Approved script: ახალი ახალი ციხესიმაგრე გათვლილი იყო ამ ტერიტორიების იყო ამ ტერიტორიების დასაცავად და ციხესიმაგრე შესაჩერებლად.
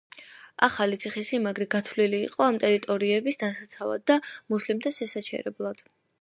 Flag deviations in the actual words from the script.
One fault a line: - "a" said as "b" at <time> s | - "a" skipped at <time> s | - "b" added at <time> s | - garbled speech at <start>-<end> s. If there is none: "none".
- "ახალი" skipped at 1.0 s
- "იყო ამ ტერიტორიების" skipped at 3.4 s
- "ციხესიმაგრე" said as "მუსლიმთა" at 4.6 s